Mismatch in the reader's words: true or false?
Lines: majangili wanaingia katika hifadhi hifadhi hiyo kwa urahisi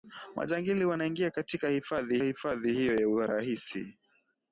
false